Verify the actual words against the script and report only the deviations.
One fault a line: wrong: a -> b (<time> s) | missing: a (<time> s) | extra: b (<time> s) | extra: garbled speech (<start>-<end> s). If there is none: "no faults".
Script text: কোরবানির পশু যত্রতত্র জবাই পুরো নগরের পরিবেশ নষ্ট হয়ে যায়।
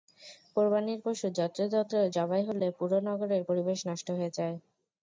extra: হলে (2.5 s)